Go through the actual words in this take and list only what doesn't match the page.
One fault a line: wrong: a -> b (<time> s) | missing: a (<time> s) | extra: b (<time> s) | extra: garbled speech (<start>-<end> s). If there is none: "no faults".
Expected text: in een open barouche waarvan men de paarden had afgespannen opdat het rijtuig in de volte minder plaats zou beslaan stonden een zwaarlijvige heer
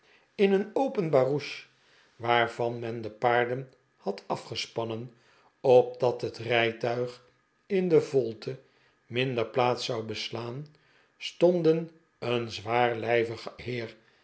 no faults